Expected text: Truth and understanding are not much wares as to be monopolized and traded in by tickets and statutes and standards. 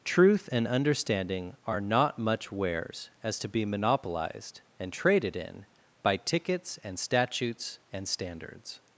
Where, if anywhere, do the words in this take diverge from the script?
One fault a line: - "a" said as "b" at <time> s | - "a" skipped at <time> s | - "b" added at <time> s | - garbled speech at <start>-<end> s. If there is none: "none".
none